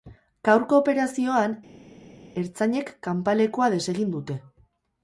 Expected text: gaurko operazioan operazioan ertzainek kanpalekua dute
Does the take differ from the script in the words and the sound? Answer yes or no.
yes